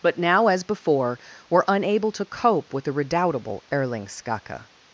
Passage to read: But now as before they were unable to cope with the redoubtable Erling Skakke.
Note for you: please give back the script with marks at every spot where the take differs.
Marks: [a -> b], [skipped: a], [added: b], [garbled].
But now as before [skipped: they] were unable to cope with the redoubtable Erling Skakke.